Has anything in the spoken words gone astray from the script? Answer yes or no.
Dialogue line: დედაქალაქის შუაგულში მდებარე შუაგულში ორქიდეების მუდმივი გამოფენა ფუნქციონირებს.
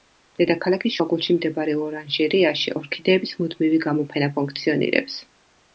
yes